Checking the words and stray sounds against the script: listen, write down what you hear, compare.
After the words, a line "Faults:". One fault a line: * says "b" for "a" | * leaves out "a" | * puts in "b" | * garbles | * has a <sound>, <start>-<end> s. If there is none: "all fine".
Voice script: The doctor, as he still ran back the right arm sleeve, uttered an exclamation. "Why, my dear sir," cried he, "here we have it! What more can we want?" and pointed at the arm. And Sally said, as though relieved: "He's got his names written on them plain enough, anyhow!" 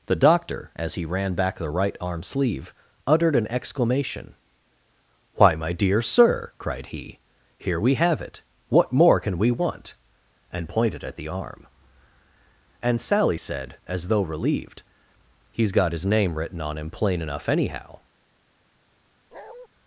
The doctor, as he ran back the right arm sleeve, uttered an exclamation. "Why, my dear sir," cried he, "here we have it! What more can we want?" and pointed at the arm. And Sally said, as though relieved: "He's got his name written on him plain enough, anyhow!"
Faults:
* leaves out "still"
* says "name" for "names"
* says "him" for "them"
* has a bark, 19.3-19.7 s